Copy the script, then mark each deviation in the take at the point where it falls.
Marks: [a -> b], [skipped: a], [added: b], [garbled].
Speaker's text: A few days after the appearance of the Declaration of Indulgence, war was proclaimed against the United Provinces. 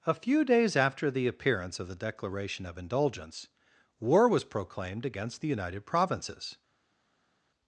A few days after the appearance of the Declaration of Indulgence, war was proclaimed against the United Provinces.